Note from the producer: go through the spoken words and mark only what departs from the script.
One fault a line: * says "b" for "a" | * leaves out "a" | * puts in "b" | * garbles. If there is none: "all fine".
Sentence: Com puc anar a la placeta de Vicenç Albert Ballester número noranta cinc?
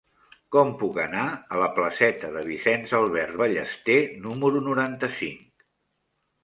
all fine